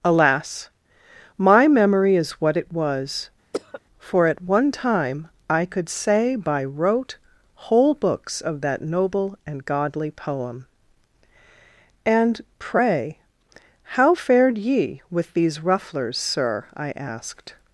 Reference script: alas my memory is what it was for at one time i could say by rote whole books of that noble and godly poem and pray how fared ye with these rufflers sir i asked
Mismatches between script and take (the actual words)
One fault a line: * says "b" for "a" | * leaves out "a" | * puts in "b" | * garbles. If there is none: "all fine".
all fine